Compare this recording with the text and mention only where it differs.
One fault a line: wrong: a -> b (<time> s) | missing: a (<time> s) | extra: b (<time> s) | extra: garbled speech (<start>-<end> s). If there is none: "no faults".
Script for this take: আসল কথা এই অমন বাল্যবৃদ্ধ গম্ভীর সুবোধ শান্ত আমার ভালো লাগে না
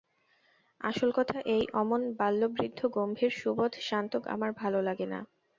no faults